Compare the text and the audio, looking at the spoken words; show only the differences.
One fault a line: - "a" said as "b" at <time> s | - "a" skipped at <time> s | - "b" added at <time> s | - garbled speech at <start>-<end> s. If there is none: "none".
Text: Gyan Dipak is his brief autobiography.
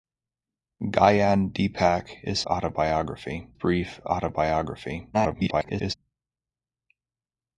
- "his" said as "autobiography" at 2.5 s
- garbled speech at 5.1-5.9 s